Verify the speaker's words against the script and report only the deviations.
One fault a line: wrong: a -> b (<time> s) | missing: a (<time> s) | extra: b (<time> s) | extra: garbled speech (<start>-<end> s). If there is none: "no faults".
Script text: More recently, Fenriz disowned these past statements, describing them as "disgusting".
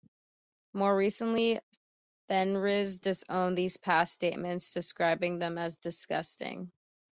no faults